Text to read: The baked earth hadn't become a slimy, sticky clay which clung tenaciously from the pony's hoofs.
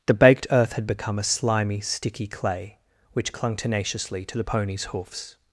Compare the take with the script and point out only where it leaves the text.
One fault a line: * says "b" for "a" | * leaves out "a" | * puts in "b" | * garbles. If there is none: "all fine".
* says "had" for "hadn't"
* says "to" for "from"